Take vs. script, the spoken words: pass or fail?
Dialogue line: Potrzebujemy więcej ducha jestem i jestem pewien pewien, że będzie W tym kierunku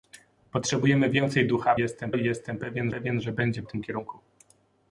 pass